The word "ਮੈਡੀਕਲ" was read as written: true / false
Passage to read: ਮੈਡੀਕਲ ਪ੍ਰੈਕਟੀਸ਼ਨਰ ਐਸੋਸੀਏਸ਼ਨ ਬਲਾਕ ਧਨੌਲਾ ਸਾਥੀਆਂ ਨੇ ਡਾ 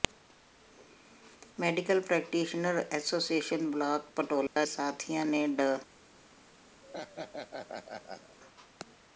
true